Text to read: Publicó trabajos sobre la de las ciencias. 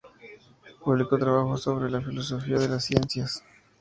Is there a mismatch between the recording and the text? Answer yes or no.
yes